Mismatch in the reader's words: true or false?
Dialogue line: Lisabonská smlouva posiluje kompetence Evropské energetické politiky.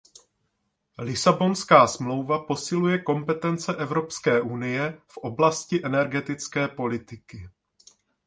true